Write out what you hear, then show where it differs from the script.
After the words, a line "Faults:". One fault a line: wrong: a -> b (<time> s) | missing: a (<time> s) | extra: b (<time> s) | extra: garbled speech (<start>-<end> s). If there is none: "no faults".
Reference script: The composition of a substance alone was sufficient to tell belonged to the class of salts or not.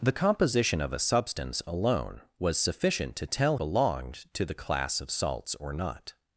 The composition of a substance alone was sufficient to tell belonged to the class of salts or not.
Faults:
no faults